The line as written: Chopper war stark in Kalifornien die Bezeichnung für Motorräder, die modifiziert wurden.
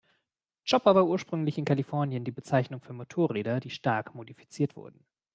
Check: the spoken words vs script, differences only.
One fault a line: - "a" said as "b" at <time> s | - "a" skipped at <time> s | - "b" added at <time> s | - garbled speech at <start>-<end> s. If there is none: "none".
- "stark" said as "ursprünglich" at 1.1 s
- "stark" added at 3.7 s